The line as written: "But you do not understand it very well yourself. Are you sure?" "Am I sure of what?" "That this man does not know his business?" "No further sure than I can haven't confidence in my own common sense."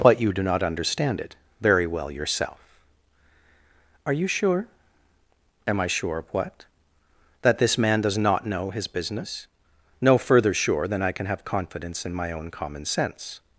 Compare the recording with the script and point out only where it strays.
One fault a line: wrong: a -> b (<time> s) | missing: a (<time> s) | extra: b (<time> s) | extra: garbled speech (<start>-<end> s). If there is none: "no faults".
wrong: haven't -> have (11.3 s)